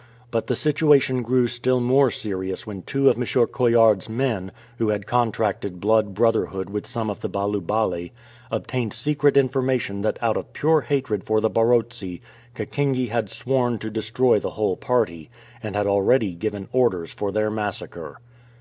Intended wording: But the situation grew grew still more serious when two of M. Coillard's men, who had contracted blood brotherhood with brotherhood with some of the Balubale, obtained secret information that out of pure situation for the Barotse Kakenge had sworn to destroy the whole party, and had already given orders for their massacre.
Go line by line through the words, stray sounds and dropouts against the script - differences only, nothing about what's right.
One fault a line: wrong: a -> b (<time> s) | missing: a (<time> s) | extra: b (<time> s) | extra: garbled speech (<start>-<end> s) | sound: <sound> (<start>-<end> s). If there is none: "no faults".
missing: grew (1.5 s)
missing: brotherhood with (6.9 s)
wrong: situation -> hatred (10.8 s)